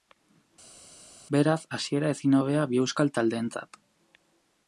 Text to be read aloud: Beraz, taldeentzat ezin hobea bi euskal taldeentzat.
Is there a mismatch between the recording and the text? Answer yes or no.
yes